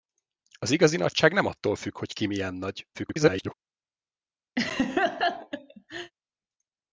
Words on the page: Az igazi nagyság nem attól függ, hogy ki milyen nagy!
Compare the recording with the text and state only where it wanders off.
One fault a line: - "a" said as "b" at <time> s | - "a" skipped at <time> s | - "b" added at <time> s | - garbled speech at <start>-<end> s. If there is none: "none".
- garbled speech at 2.9-3.5 s